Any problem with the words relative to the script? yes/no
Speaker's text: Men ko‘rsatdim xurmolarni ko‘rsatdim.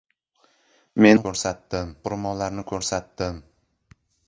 no